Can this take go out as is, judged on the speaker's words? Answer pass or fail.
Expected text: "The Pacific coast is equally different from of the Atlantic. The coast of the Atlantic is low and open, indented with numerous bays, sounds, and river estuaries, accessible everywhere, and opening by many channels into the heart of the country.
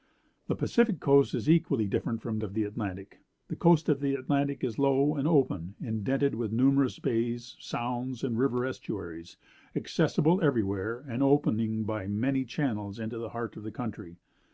pass